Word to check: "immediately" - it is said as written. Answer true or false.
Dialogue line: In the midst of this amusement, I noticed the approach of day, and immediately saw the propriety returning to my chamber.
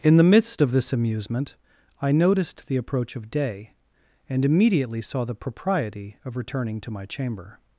true